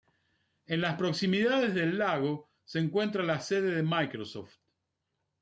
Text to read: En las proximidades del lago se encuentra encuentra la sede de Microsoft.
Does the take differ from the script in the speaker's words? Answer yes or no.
yes